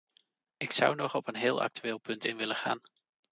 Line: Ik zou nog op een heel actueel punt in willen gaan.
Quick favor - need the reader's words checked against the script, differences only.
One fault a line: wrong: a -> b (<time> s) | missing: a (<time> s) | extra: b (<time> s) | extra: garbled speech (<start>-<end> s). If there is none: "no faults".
no faults